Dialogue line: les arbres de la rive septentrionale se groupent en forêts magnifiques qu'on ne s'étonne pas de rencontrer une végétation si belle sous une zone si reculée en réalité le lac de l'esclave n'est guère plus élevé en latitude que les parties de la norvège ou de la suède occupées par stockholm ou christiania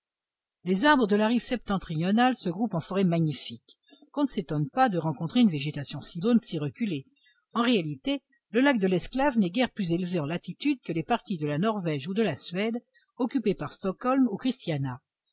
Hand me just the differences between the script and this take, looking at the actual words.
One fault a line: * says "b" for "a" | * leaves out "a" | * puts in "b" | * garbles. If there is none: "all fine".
* leaves out "belle sous une"